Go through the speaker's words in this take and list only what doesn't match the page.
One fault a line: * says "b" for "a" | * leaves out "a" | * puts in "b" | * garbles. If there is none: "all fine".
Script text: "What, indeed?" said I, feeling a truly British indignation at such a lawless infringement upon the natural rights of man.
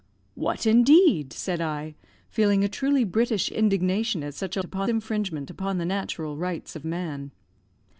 * says "upon" for "lawless"